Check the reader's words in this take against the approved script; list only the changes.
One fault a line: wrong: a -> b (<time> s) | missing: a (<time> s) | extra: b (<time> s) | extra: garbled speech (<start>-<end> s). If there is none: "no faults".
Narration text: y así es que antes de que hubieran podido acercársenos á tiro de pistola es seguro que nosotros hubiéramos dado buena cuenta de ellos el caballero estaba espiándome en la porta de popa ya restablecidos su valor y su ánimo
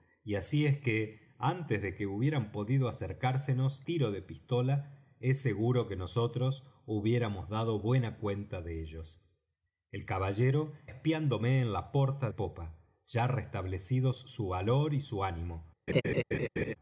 missing: á (3.8 s)
missing: estaba (10.7 s)
missing: de (12.3 s)